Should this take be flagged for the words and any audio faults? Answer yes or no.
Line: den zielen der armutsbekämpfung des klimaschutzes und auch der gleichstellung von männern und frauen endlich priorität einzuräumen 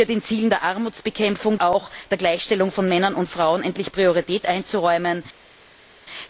yes